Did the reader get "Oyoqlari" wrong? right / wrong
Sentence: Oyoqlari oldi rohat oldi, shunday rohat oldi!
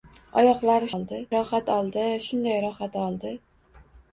right